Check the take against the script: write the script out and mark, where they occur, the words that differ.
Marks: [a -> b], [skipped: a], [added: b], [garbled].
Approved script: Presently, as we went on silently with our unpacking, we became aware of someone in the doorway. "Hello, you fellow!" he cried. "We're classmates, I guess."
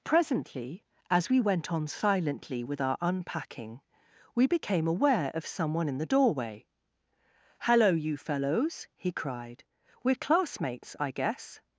Presently, as we went on silently with our unpacking, we became aware of someone in the doorway. "Hello, you [fellow!" -> fellows] he cried. "We're classmates, I guess."